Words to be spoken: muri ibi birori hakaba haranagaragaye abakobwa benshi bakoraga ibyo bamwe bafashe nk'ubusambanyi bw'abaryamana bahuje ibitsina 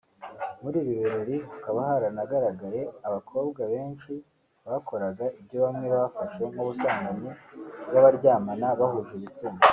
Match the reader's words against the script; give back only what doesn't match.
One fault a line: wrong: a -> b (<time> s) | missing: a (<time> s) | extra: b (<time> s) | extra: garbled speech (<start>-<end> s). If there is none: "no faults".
no faults